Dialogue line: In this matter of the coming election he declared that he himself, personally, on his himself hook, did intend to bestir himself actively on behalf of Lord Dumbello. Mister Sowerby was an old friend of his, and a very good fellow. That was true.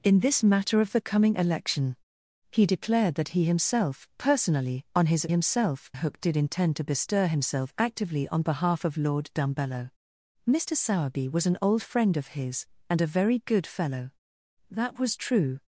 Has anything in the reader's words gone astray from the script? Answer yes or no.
no